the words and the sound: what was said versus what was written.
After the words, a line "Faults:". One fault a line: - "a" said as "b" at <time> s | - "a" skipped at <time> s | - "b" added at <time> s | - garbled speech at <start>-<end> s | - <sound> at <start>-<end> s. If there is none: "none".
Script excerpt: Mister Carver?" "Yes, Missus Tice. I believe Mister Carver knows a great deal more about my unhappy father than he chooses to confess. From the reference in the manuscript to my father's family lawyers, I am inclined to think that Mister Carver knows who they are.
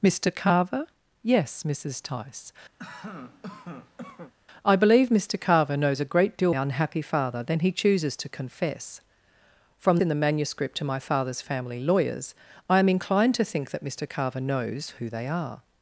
Mister Carver?" "Yes, Missus Tice. I believe Mister Carver knows a great deal unhappy father than he chooses to confess. From in the manuscript to my father's family lawyers, I am inclined to think that Mister Carver knows who they are.
Faults:
- cough at 2.8-4.3 s
- "more about my" skipped at 6.5 s
- "the reference" skipped at 10.0 s